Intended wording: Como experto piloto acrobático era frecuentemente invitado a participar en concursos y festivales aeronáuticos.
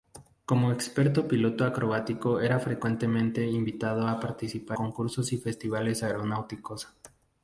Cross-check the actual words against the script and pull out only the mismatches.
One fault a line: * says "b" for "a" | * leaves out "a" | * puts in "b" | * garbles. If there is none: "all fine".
* leaves out "en"